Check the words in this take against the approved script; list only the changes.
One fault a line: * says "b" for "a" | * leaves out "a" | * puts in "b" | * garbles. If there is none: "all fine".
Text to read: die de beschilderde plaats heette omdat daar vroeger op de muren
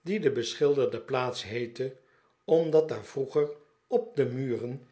all fine